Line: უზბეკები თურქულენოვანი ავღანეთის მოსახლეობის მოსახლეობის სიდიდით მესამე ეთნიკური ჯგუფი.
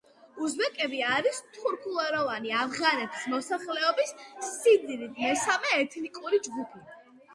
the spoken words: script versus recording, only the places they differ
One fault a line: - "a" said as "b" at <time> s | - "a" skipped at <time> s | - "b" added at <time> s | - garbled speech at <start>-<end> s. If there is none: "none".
- "არის" added at 1.1 s
- "მოსახლეობის" skipped at 4.2 s